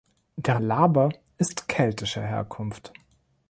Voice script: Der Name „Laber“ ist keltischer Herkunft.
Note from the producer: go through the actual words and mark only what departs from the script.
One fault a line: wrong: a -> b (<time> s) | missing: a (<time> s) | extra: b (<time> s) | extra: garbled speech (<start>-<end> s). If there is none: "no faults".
missing: Name (0.6 s)